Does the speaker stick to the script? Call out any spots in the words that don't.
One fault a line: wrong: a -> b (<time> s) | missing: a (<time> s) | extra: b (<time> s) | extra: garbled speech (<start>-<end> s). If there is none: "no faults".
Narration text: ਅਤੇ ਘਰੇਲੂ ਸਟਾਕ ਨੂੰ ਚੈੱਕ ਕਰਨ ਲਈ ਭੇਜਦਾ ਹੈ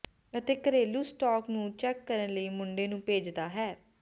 extra: ਮੁੰਡੇ ਨੂੰ (2.5 s)